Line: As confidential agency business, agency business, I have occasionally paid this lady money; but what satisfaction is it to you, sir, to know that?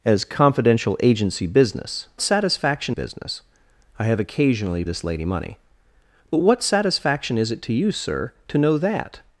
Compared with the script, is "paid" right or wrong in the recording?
wrong